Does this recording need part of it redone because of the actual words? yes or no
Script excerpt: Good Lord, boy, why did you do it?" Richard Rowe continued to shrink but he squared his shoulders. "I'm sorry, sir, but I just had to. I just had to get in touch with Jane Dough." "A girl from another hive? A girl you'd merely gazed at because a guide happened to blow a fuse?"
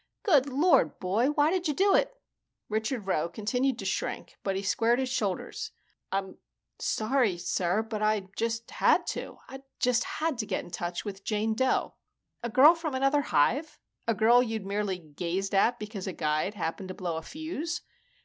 no